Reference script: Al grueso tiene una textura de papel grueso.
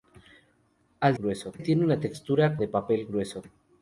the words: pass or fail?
pass